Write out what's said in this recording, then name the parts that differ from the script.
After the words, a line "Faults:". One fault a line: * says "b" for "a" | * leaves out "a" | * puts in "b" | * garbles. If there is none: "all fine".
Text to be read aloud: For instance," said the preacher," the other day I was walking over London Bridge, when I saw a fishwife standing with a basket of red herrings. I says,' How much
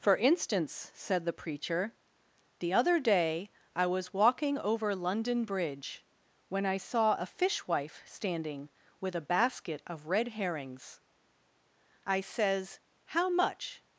For instance," said the preacher," the other day I was walking over London Bridge, when I saw a fishwife standing with a basket of red herrings. I says,' How much
Faults:
all fine